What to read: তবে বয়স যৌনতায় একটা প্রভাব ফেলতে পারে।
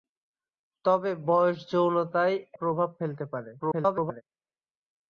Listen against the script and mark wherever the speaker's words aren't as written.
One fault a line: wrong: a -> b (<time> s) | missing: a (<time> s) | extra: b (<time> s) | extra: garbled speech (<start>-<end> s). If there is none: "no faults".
missing: একটা (2.4 s)
extra: garbled speech (3.6-4.2 s)